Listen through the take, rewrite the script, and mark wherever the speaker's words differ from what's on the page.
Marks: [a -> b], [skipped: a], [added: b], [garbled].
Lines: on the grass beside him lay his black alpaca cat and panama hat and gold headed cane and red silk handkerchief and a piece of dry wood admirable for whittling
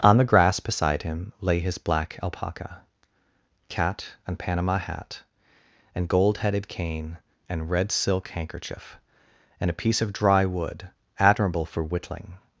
on the grass beside him lay his black alpaca cat and panama hat and gold headed cane and red silk handkerchief and a piece of dry wood admirable for whittling